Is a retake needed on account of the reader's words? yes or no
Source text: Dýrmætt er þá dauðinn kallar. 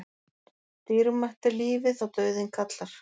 yes